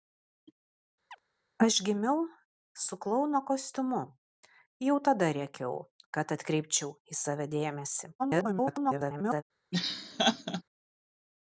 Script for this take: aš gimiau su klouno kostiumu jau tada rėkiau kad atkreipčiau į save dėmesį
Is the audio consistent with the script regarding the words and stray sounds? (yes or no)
no